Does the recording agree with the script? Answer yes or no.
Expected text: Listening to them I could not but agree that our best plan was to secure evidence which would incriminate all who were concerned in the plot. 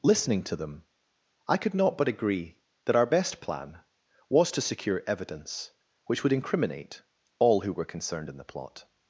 yes